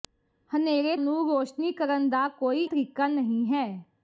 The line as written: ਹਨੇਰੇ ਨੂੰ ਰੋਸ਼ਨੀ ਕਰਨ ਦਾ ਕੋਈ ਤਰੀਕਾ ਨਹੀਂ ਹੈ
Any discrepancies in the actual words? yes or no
no